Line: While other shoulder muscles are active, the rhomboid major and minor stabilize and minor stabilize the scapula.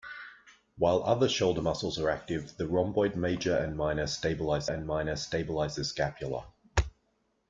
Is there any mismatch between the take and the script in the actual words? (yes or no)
no